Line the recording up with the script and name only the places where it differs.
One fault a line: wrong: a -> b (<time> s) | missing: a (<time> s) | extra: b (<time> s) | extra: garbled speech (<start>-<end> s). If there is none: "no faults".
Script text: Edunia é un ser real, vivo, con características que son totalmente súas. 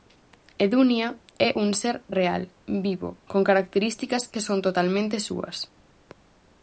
no faults